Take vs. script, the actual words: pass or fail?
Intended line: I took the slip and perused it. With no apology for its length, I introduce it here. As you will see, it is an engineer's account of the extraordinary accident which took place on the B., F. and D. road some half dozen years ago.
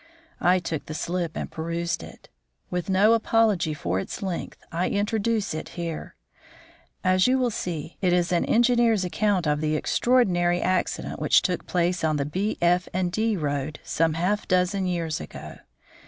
pass